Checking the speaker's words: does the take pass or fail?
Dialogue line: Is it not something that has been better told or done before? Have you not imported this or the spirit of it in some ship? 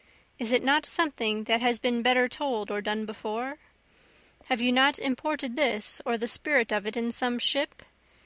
pass